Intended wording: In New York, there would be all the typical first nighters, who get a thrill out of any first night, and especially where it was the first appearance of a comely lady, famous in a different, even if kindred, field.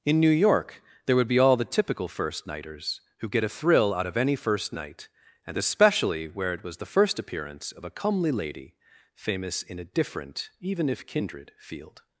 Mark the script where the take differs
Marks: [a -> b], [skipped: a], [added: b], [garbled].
In New York, there would be all the typical first nighters, who get a thrill out of any first night, and especially where it was the first appearance of a comely lady, famous in a different, even if kindred, field.